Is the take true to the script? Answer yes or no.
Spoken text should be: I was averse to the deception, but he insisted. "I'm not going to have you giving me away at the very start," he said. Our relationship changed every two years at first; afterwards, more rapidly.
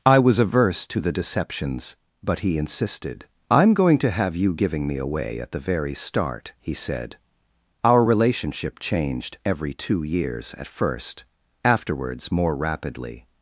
no